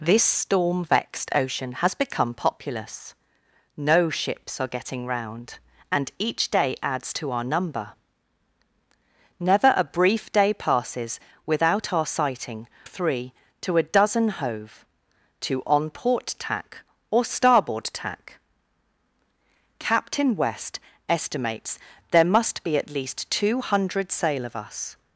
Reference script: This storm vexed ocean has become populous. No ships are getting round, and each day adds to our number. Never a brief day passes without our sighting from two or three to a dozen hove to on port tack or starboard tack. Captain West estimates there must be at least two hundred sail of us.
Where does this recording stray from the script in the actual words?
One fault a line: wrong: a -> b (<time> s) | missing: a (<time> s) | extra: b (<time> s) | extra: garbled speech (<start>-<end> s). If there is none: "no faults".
missing: from two or (12.7 s)